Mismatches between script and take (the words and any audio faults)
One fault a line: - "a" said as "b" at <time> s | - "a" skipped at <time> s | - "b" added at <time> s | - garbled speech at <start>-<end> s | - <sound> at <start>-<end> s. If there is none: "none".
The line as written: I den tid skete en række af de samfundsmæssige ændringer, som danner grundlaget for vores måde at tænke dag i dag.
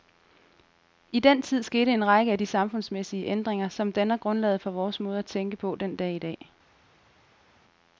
- "på den" added at 5.5 s